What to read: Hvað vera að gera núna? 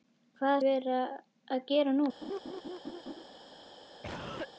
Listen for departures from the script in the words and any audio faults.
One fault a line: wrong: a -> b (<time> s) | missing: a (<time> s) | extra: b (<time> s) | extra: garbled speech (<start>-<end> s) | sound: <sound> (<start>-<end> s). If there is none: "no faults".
sound: laugh (2.2-3.2 s)
sound: cough (4.0-4.5 s)